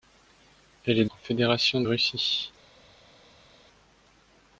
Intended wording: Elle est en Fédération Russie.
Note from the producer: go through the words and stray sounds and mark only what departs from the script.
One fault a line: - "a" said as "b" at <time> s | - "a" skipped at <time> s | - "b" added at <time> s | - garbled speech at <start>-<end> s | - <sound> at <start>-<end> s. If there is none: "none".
none